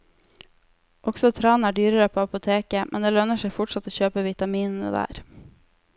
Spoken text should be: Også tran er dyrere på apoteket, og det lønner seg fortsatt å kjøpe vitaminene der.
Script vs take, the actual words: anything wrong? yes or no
yes